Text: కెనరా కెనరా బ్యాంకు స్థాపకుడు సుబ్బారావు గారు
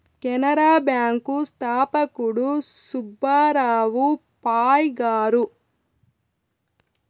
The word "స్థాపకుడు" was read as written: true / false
true